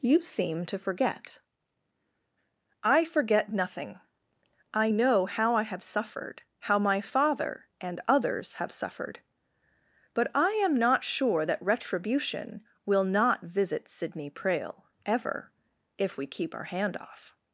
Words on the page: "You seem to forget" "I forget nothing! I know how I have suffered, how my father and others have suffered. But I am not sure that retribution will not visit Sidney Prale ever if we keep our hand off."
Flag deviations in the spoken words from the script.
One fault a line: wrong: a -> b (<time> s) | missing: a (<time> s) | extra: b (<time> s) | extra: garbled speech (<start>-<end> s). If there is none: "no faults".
no faults